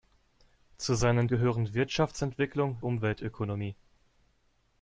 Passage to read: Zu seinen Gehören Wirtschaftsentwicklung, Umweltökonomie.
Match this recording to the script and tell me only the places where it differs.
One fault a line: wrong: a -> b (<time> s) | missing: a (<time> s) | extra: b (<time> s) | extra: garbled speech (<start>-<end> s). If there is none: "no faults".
no faults